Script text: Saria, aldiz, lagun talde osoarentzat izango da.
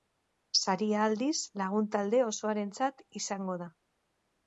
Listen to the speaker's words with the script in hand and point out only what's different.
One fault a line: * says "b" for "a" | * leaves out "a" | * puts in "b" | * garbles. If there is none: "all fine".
all fine